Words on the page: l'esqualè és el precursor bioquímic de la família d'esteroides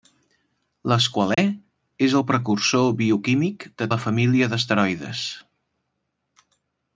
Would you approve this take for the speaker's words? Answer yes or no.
yes